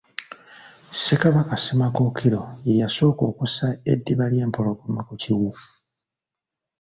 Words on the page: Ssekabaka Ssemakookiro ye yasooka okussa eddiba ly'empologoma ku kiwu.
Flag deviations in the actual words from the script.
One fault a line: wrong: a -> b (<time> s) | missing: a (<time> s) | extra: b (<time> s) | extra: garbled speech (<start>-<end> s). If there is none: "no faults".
no faults